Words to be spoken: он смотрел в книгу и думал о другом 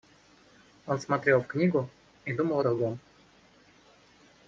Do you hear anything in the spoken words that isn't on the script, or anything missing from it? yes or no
no